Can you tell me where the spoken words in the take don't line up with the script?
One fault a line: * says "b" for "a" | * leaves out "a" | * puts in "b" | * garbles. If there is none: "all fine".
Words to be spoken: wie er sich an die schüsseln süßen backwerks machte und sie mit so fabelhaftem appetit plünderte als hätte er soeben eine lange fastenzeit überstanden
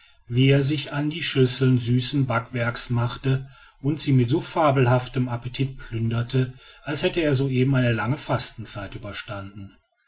all fine